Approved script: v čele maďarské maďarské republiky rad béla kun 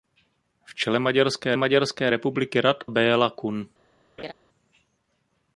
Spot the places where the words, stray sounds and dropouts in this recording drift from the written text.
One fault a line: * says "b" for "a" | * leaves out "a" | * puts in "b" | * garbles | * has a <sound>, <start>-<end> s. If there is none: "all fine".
* has a laugh, 4.2-4.3 s